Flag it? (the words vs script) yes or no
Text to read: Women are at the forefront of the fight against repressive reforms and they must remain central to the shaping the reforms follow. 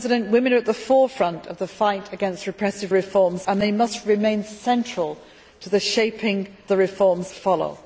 no